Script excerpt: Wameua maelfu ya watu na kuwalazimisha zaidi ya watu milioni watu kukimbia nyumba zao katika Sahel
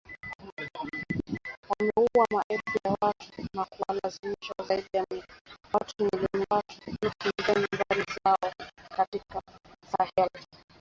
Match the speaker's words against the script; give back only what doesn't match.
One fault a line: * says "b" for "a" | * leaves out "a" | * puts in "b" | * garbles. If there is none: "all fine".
all fine